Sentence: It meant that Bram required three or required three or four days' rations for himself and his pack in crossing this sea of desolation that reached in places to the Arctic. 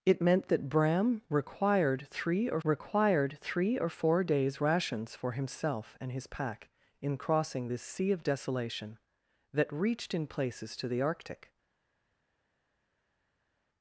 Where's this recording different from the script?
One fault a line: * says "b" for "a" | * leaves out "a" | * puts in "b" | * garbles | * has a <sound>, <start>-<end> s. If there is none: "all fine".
all fine